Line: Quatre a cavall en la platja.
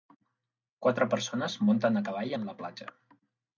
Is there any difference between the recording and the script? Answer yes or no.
yes